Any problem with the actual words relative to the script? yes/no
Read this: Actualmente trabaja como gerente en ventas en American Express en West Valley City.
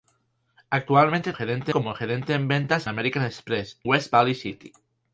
yes